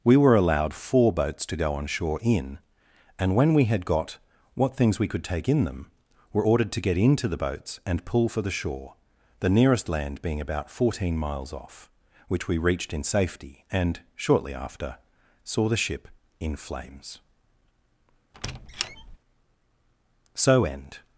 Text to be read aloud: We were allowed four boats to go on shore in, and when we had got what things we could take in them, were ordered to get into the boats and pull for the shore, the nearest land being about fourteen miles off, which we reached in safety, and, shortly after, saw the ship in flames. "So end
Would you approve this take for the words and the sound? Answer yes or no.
no